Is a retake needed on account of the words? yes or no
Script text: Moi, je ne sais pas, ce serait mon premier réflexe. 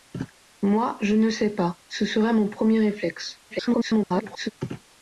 yes